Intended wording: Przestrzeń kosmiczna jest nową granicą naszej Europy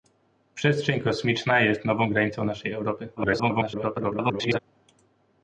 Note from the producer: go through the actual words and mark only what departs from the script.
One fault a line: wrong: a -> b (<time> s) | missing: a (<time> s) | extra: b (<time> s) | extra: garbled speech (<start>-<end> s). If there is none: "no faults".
extra: garbled speech (3.2-4.6 s)